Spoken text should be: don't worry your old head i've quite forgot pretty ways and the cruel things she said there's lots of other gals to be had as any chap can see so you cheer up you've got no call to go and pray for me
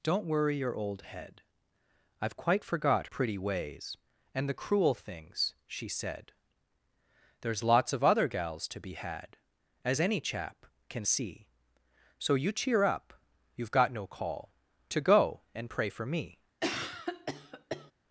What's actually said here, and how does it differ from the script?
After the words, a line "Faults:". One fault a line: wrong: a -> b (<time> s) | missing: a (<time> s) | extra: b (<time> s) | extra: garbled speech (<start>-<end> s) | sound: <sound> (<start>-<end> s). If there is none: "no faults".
don't worry your old head i've quite forgot pretty ways and the cruel things she said there's lots of other gals to be had as any chap can see so you cheer up you've got no call to go and pray for me
Faults:
sound: cough (16.6-17.9 s)